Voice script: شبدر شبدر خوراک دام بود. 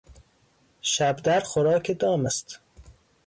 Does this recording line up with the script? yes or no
no